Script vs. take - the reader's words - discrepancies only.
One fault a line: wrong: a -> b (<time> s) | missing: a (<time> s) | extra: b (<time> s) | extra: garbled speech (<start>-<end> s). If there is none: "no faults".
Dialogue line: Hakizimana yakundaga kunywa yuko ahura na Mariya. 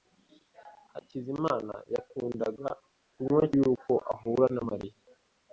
no faults